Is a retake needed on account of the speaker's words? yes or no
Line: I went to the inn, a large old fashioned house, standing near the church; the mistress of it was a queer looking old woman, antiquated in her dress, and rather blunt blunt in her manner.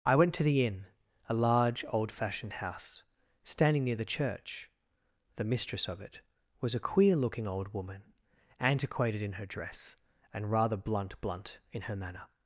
no